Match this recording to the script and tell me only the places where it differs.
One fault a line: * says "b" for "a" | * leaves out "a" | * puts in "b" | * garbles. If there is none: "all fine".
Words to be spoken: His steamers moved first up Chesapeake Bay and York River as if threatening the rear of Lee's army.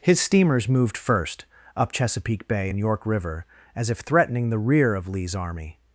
all fine